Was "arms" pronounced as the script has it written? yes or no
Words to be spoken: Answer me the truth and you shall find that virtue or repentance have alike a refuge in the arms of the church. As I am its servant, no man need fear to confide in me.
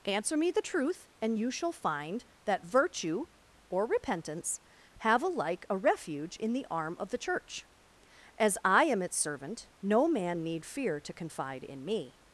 no